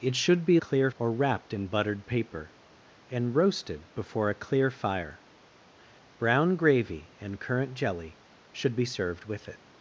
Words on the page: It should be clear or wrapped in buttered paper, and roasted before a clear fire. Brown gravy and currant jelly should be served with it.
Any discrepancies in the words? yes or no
no